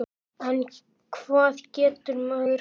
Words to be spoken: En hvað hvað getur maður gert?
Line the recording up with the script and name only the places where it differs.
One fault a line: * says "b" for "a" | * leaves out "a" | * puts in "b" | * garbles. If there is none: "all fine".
* leaves out "hvað"